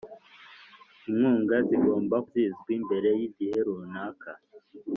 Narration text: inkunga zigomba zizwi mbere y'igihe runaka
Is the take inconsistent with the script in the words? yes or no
no